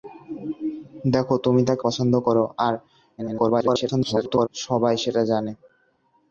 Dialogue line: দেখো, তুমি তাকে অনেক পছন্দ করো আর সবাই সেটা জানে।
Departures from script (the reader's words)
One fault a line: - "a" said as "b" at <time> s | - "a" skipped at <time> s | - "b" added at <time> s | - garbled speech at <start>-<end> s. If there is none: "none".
- "অনেক" skipped at 1.8 s
- garbled speech at 3.2-4.5 s